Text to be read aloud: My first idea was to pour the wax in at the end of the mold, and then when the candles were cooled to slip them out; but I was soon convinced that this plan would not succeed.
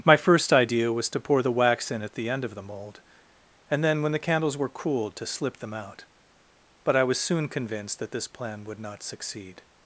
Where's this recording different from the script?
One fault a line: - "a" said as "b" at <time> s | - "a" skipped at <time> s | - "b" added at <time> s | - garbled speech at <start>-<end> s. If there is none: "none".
none